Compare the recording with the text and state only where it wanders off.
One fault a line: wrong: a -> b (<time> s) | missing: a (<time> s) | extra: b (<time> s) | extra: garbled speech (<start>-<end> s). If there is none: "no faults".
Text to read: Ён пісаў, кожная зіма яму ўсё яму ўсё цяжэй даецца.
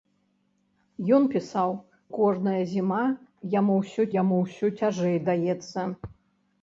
no faults